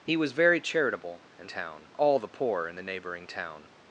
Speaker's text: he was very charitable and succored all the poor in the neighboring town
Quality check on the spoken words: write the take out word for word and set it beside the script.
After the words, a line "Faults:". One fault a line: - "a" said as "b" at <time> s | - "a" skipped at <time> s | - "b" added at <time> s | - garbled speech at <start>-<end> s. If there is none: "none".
he was very charitable and town all the poor in the neighboring town
Faults:
- "succored" said as "town" at 1.5 s